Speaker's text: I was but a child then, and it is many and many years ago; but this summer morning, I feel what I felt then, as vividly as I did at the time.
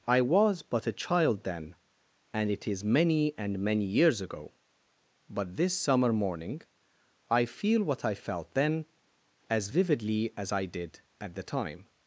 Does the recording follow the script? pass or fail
pass